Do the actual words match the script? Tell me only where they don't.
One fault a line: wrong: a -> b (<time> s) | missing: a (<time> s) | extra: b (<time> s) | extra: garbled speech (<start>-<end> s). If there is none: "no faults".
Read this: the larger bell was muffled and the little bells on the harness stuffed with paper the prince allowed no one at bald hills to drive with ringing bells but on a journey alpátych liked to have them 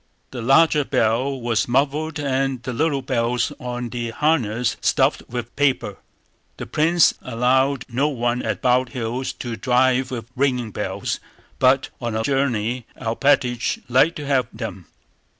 no faults